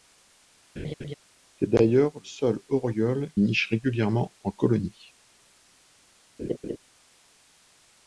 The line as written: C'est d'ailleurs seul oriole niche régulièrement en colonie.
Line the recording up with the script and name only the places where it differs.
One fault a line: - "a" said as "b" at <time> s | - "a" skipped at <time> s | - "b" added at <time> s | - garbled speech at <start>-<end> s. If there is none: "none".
none